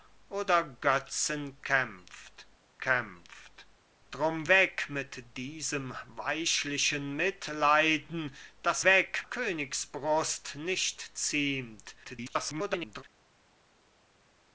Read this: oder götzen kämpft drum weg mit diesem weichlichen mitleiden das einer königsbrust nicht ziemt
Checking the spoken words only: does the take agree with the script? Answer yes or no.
no